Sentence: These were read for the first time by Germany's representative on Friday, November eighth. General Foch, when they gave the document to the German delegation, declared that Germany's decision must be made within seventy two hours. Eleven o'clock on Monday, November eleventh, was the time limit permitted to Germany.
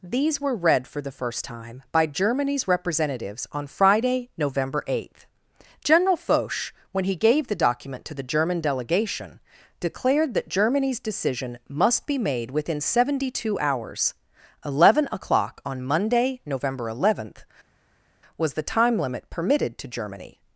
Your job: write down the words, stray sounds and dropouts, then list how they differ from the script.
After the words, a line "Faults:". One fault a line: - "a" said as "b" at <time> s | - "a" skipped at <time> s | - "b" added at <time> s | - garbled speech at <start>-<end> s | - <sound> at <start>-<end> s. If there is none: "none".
These were read for the first time by Germany's representatives on Friday, November eighth. General Foch, when he gave the document to the German delegation, declared that Germany's decision must be made within seventy two hours. Eleven o'clock on Monday, November eleventh, was the time limit permitted to Germany.
Faults:
- "representative" said as "representatives" at 2.7 s
- "they" said as "he" at 7.0 s